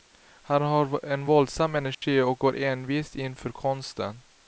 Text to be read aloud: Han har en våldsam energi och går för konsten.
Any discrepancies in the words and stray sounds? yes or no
yes